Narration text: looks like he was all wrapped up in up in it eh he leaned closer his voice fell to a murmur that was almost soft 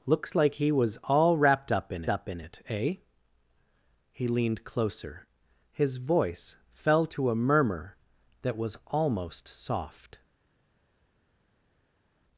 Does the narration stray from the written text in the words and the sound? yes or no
no